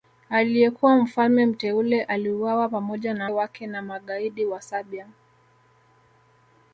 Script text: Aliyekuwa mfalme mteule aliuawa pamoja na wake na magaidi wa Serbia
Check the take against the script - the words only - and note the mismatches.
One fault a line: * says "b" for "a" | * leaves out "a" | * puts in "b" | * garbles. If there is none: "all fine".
all fine